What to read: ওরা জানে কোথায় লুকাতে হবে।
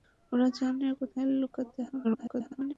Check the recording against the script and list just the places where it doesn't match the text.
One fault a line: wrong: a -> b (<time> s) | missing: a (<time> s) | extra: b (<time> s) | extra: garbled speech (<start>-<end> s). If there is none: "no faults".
extra: garbled speech (2.0-2.7 s)